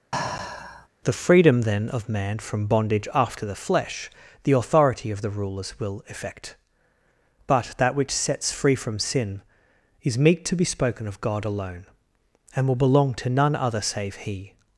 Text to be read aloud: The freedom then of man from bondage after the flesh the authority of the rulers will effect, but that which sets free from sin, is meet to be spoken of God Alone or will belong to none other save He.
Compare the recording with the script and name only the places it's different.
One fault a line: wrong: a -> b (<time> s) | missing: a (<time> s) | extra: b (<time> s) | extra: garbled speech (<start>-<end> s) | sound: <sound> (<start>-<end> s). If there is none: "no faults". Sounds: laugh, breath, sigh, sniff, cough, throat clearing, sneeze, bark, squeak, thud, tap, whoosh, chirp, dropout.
sound: sigh (0.1-0.9 s)
wrong: or -> and (12.6 s)